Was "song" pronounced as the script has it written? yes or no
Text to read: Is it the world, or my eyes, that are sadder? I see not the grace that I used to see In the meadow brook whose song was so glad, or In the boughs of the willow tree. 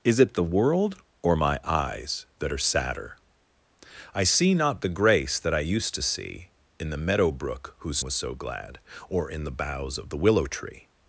no